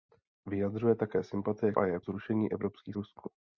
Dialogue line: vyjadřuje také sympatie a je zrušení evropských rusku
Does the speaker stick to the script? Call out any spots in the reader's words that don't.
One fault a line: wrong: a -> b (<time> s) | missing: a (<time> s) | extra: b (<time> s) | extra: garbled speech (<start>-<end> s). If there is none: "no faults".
no faults